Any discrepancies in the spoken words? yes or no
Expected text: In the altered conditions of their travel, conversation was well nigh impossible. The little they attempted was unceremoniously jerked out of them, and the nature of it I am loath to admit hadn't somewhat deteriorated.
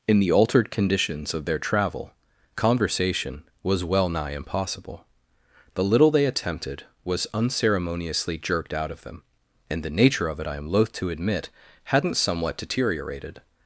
no